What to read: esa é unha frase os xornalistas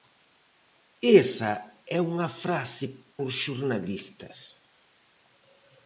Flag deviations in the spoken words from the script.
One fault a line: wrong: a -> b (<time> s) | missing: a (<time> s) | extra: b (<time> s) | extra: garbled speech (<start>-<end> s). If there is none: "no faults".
no faults